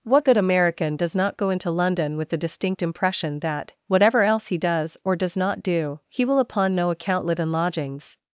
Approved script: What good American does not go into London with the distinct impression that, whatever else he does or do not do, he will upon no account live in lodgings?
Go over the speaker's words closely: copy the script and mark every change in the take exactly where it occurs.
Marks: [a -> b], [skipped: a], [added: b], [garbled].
What good American does not go into London with the distinct impression that, whatever else he does or [do -> does] not do, he will upon no account live in lodgings?